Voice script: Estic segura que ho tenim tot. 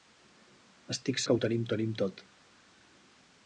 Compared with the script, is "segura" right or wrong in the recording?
wrong